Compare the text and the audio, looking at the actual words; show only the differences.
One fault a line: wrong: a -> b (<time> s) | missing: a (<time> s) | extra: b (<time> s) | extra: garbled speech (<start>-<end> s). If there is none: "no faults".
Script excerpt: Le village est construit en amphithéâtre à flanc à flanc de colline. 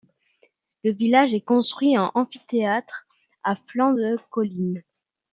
missing: à flanc (3.9 s)